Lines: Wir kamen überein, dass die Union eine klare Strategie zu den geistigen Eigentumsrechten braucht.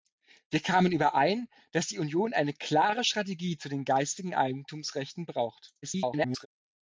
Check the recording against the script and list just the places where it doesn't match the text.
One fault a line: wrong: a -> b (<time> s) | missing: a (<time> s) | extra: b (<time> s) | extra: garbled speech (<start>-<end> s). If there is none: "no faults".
extra: garbled speech (5.8-6.5 s)